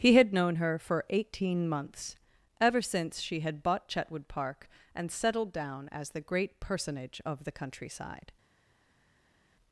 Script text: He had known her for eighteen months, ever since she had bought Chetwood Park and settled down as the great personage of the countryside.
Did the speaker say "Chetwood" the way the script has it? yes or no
yes